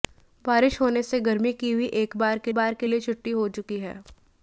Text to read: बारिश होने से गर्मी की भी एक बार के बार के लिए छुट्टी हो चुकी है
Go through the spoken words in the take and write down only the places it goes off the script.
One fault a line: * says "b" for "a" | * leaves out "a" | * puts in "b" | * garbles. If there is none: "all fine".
all fine